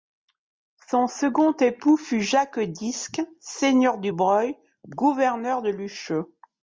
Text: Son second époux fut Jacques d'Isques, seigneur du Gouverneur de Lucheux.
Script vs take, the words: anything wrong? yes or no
yes